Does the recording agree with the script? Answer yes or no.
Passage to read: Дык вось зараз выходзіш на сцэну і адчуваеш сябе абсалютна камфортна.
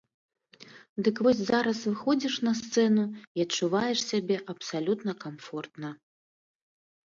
yes